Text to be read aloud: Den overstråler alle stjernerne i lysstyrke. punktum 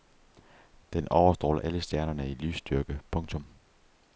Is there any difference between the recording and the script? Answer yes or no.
no